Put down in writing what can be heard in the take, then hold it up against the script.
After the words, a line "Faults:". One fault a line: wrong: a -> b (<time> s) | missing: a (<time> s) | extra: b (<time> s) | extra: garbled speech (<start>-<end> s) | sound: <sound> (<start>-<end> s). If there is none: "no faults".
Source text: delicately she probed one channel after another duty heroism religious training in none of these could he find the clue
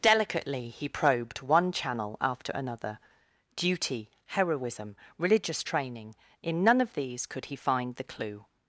delicately he probed one channel after another duty heroism religious training in none of these could he find the clue
Faults:
wrong: she -> he (0.7 s)